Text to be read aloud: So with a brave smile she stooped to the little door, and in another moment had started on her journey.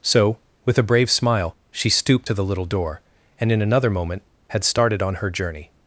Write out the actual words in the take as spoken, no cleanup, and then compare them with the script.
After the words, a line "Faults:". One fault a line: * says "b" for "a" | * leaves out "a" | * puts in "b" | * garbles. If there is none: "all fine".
So with a brave smile she stooped to the little door, and in another moment had started on her journey.
Faults:
all fine